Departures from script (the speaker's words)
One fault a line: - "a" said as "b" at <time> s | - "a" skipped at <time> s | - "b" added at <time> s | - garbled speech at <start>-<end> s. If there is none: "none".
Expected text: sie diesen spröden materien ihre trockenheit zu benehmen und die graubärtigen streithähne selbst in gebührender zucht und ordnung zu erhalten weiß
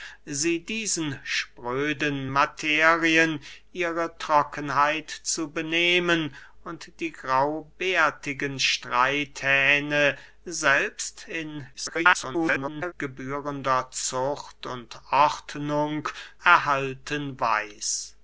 - garbled speech at 11.7-12.9 s
- "zu" skipped at 16.1 s